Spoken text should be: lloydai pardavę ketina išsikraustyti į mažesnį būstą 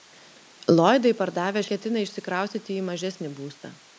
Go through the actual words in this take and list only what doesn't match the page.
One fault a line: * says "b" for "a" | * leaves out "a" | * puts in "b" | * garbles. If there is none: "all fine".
all fine